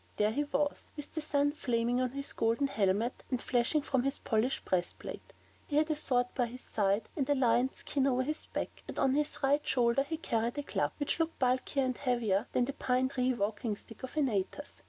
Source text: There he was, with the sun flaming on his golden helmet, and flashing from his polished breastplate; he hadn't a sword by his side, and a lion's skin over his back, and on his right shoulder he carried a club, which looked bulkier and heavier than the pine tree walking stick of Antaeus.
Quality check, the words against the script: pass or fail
fail